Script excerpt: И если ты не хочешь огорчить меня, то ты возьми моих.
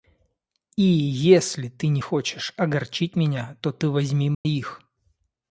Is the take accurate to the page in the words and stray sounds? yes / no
no